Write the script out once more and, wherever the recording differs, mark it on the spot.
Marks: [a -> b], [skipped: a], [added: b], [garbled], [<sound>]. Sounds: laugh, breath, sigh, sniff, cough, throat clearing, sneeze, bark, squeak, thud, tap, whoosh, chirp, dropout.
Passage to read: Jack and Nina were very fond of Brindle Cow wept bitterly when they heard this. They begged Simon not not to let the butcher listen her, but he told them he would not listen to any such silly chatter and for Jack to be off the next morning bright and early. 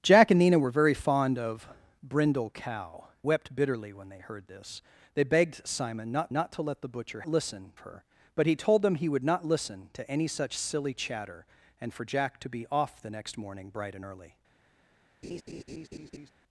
Jack and Nina were very fond of Brindle Cow wept bitterly when they heard this. They begged Simon not not to let the butcher listen her, but he told them he would not listen to any such silly chatter and for Jack to be off the next morning bright and early. [laugh]